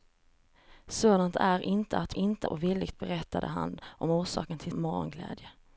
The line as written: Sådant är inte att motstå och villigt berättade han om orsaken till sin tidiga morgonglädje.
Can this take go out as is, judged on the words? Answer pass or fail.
fail